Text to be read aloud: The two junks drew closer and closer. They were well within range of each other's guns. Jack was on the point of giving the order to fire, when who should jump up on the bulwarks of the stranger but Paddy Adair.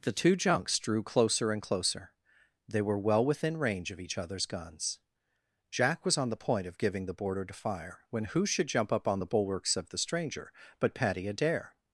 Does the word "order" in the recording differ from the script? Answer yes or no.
yes